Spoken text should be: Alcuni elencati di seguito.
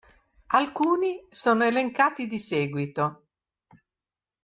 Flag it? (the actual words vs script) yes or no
yes